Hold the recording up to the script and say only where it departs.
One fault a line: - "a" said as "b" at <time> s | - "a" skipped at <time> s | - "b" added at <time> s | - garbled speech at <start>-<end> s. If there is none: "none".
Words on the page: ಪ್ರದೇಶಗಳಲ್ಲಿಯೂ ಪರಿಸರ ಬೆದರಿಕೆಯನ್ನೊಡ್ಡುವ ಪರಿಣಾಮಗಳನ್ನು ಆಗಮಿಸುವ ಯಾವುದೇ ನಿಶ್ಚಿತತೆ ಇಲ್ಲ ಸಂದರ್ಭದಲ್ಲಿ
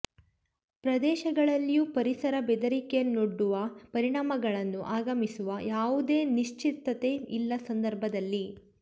none